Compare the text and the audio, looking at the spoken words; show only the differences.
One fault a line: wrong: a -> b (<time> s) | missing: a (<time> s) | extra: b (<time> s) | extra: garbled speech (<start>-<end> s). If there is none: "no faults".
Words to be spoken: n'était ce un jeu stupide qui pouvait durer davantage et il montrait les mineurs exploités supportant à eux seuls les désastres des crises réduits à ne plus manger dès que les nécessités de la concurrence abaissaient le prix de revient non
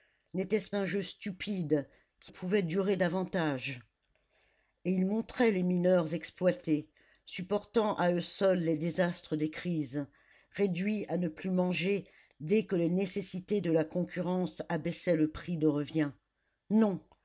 no faults